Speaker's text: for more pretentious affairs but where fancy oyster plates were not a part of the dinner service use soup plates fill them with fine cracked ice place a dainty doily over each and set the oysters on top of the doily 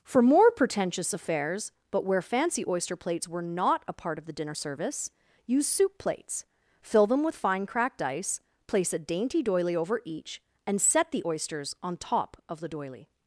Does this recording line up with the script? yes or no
yes